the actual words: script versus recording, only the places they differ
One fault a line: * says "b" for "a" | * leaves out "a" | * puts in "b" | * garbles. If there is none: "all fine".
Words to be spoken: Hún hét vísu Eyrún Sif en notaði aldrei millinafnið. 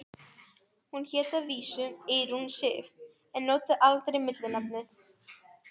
* puts in "að"